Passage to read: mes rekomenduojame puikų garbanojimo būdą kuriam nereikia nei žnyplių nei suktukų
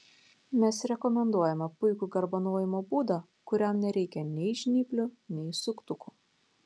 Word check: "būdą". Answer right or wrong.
right